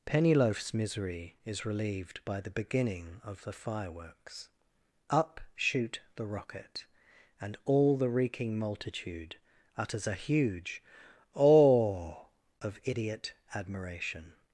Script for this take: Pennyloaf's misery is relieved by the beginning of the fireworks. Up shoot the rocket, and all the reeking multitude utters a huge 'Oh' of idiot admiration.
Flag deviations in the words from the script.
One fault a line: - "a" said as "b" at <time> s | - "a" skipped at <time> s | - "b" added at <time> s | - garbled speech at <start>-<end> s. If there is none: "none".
none